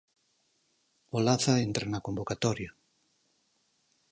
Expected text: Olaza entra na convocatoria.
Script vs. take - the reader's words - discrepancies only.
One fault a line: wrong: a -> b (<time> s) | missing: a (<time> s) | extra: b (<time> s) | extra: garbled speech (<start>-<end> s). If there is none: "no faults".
no faults